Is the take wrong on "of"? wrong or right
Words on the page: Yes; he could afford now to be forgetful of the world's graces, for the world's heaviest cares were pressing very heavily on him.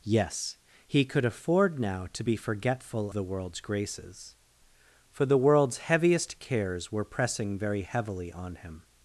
wrong